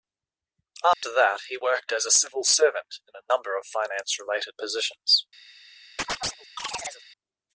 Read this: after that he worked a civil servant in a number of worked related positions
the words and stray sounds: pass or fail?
fail